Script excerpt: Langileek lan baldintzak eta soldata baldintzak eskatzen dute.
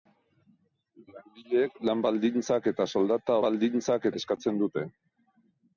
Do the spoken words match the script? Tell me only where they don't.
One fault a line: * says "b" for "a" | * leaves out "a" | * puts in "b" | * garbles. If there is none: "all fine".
all fine